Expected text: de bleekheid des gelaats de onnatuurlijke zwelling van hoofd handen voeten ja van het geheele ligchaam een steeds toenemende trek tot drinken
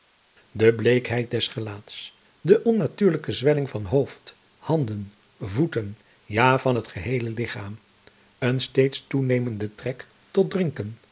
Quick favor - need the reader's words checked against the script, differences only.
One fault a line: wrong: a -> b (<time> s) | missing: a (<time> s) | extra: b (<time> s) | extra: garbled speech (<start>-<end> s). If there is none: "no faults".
no faults